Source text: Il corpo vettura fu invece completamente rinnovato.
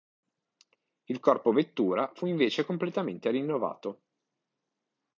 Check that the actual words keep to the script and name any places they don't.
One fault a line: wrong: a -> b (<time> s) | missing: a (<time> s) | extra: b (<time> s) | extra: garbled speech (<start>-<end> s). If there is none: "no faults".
no faults